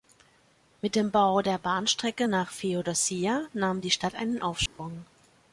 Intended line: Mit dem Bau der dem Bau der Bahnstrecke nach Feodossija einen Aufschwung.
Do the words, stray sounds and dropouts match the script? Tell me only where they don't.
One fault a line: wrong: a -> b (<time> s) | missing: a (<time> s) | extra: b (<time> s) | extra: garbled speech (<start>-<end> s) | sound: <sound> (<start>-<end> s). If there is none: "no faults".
wrong: dem Bau der Bahnstrecke nach Feodossija -> Bahnstrecke nach Feodossija nahm die Stadt (1.6 s)
sound: dropout (4.7-4.8 s)